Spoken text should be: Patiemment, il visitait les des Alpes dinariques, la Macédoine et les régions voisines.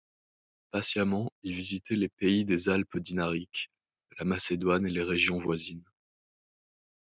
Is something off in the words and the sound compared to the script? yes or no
yes